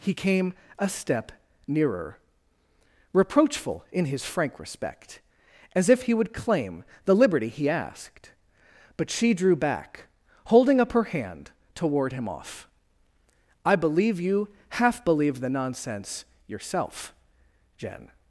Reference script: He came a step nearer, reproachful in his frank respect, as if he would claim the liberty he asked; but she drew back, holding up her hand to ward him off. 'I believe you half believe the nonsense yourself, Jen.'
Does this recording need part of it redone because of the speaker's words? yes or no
no